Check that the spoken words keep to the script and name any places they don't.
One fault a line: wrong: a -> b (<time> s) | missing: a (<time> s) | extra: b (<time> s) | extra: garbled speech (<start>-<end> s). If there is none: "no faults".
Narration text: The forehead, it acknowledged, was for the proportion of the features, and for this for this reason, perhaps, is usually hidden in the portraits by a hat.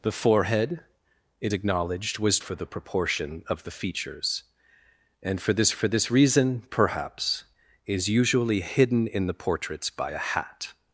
no faults